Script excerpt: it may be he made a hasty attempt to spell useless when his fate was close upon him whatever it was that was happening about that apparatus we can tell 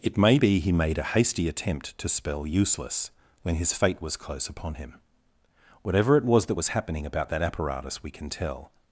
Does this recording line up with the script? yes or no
yes